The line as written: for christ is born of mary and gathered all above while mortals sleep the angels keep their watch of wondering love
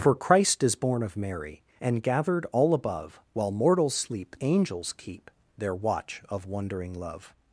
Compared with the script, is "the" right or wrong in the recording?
wrong